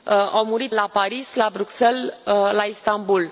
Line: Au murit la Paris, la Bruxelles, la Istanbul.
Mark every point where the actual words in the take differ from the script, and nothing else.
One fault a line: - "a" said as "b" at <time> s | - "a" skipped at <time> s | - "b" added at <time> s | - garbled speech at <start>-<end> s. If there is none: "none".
none